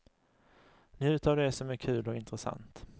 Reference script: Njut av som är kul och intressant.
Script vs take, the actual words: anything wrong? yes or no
yes